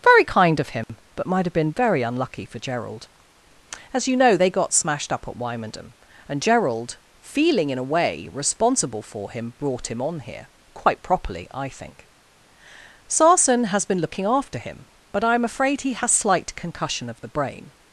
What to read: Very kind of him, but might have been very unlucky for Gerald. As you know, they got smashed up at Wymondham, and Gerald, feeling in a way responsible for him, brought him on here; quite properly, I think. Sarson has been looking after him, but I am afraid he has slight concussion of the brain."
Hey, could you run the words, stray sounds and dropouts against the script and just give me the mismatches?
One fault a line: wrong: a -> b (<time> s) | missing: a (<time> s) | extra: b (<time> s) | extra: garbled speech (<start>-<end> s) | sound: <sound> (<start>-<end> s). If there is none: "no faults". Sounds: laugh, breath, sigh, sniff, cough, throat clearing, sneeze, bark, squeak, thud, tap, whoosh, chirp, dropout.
sound: dropout (0.8-0.9 s)